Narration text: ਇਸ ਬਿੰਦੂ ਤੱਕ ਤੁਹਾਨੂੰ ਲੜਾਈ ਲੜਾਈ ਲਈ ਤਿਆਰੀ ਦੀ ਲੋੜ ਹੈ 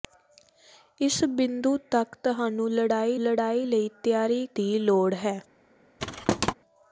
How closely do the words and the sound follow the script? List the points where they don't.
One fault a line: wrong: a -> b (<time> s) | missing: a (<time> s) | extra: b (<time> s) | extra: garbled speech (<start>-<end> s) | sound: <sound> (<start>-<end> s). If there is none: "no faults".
sound: thud (6.0-6.5 s)